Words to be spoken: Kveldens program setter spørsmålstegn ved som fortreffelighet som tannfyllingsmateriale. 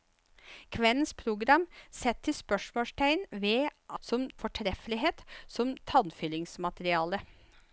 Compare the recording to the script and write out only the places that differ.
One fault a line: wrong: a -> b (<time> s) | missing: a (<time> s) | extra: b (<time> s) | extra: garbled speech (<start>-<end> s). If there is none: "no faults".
no faults